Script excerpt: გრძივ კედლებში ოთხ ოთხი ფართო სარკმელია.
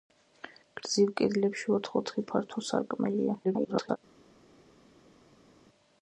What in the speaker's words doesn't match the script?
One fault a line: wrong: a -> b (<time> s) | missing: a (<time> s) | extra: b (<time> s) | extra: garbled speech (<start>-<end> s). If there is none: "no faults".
extra: garbled speech (3.4-4.0 s)